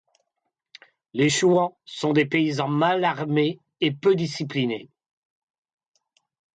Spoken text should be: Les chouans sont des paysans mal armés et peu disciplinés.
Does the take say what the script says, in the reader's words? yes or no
yes